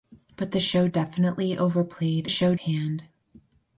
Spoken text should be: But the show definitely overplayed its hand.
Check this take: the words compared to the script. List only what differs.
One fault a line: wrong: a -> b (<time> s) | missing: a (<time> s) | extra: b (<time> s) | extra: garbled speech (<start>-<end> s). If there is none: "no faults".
wrong: its -> show (2.3 s)